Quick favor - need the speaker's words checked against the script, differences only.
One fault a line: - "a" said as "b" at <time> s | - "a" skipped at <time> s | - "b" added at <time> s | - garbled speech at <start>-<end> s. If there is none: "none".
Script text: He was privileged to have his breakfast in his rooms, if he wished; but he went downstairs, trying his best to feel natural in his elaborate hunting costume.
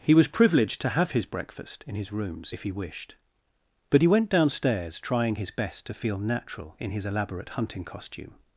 none